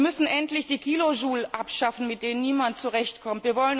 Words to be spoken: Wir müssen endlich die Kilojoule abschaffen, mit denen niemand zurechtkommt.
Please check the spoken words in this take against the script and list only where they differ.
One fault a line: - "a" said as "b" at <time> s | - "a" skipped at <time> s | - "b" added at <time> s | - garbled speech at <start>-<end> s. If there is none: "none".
none